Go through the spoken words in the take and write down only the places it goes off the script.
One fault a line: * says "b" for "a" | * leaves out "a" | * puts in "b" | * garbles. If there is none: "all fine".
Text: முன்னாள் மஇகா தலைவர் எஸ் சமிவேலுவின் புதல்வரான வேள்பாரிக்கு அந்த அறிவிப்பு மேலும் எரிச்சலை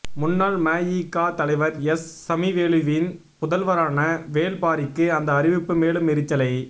all fine